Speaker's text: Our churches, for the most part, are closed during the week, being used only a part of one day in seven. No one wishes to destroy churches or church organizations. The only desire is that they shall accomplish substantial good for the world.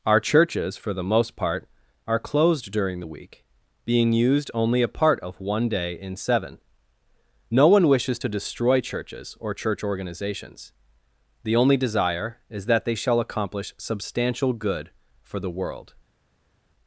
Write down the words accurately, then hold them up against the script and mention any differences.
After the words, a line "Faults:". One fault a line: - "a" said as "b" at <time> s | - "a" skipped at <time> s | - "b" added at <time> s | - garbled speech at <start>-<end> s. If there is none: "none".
Our churches, for the most part, are closed during the week, being used only a part of one day in seven. No one wishes to destroy churches or church organizations. The only desire is that they shall accomplish substantial good for the world.
Faults:
none